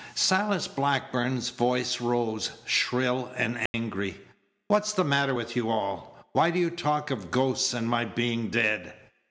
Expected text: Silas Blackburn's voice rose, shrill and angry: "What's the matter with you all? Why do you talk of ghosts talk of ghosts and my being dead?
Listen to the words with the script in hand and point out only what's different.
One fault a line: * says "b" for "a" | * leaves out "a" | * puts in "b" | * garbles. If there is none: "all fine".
* leaves out "talk of ghosts"